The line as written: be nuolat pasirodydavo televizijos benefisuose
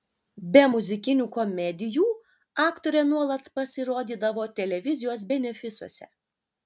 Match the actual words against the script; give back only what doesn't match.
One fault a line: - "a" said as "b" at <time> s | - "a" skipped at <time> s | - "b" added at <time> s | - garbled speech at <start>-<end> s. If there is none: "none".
- "muzikinių komedijų aktorė" added at 0.7 s